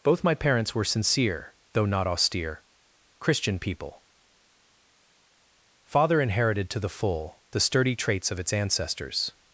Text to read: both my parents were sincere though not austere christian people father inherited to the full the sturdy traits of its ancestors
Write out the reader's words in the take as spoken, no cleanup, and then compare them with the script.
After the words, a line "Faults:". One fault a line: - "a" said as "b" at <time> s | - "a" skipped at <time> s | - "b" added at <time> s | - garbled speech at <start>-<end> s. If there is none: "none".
both my parents were sincere though not austere christian people father inherited to the full the sturdy traits of its ancestors
Faults:
none